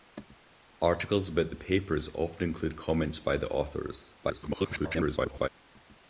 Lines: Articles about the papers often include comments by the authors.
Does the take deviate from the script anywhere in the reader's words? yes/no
yes